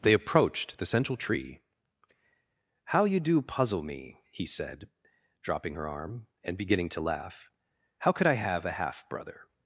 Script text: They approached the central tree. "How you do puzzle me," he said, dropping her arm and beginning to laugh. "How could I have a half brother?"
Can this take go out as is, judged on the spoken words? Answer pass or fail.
pass